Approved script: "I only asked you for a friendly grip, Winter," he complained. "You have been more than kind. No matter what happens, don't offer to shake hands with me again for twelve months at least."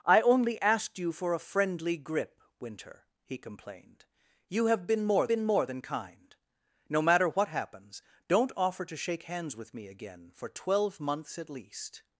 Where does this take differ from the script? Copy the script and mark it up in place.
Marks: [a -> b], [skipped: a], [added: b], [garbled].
"I only asked you for a friendly grip, Winter," he complained. "You have been more [added: been more] than kind. No matter what happens, don't offer to shake hands with me again for twelve months at least."